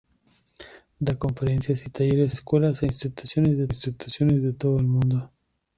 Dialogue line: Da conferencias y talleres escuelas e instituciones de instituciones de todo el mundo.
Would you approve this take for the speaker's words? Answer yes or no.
yes